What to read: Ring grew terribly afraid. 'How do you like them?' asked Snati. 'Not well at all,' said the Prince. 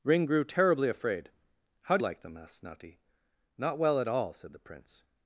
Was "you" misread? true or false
true